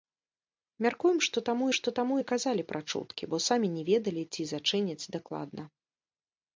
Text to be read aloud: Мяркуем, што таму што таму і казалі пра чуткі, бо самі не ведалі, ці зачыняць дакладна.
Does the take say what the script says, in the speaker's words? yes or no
yes